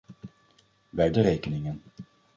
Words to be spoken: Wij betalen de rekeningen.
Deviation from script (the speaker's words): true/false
true